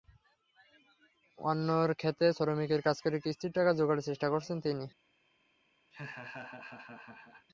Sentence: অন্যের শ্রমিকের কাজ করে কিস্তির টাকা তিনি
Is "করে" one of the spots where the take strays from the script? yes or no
no